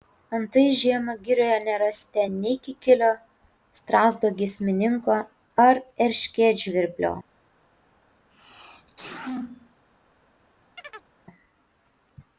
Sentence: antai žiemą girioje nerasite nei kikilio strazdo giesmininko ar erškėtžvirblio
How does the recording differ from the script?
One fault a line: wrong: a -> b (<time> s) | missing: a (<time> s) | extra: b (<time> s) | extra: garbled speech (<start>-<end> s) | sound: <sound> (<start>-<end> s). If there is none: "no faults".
sound: sneeze (8.3-9.9 s)
sound: chirp (10.8-11.1 s)